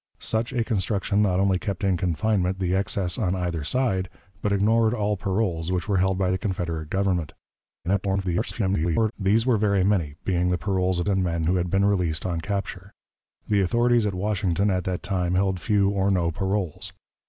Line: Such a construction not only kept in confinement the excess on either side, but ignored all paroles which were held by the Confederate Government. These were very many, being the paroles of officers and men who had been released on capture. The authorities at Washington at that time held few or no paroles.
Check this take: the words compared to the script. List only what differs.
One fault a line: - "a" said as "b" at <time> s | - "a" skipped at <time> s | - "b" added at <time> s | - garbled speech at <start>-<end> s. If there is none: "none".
- garbled speech at 7.8-9.1 s
- "officers" skipped at 11.1 s